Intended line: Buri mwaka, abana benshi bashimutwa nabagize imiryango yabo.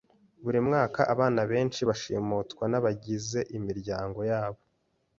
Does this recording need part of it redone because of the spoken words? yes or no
no